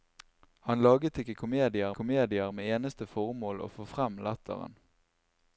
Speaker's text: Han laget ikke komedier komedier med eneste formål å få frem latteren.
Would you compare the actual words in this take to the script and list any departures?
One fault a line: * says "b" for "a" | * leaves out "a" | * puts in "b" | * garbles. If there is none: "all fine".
all fine